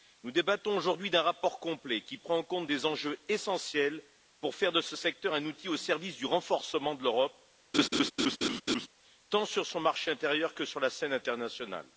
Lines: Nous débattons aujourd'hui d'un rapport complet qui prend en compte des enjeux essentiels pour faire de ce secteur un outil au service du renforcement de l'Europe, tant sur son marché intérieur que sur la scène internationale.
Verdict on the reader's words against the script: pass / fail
pass